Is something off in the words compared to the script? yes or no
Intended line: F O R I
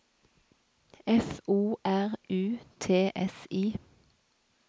yes